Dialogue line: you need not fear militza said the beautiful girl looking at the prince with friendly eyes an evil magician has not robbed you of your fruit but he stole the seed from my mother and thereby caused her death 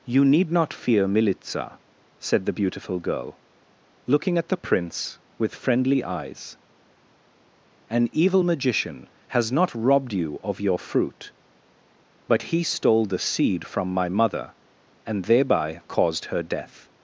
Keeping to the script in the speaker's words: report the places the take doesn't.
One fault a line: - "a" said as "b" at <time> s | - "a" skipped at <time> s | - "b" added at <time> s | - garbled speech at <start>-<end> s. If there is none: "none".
none